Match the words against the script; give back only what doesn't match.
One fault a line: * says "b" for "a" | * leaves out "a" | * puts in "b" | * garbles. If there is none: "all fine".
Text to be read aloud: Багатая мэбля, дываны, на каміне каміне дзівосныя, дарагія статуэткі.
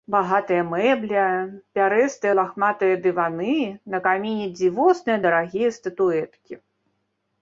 * puts in "пярэстыя лахматыя"
* leaves out "каміне"